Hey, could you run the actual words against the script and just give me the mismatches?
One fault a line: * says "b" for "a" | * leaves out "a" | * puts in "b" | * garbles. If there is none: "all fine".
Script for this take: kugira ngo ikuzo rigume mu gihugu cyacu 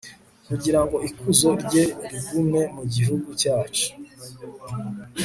* puts in "rye"